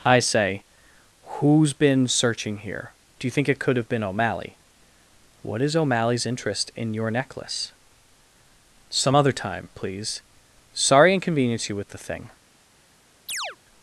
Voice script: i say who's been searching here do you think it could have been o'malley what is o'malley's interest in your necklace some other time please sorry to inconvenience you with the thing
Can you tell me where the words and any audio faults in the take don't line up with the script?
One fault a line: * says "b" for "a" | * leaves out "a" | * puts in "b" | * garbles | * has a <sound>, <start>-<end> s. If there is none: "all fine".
* leaves out "to"
* has a chirp, 13.3-13.6 s